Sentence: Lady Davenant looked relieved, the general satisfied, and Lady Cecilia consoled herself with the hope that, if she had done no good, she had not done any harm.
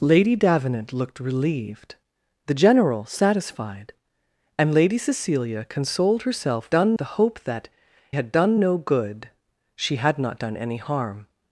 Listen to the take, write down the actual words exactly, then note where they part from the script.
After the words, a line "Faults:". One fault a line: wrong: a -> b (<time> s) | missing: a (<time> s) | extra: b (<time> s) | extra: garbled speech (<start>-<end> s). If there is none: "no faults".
Lady Davenant looked relieved, the general satisfied, and Lady Cecilia consoled herself done the hope that, had done no good, she had not done any harm.
Faults:
wrong: with -> done (6.7 s)
missing: if she (7.7 s)